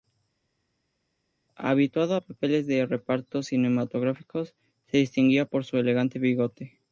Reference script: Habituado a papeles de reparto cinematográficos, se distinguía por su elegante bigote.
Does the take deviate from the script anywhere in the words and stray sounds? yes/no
no